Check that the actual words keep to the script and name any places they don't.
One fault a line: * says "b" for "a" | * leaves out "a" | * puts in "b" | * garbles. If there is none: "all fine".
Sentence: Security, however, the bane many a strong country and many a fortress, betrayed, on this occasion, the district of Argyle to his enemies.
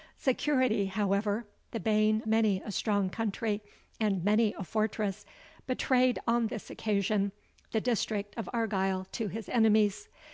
all fine